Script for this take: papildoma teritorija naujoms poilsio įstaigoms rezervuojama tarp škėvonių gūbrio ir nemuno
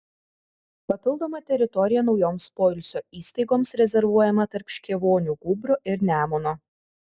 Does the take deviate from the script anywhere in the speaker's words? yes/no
no